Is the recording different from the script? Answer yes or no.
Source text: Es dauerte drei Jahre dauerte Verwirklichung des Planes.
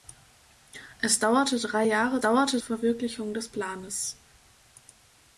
no